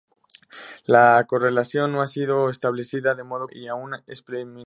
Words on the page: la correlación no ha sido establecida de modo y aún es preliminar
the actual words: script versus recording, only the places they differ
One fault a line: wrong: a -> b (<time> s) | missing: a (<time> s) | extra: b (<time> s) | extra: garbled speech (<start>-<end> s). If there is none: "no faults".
no faults